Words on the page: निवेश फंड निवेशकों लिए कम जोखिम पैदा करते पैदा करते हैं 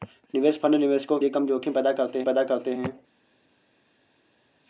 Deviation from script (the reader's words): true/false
false